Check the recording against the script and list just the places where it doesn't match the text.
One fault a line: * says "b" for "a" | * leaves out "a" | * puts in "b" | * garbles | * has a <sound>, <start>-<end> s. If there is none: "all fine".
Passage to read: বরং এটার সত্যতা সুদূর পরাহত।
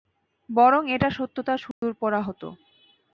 * has a dropout, 1.7-1.8 s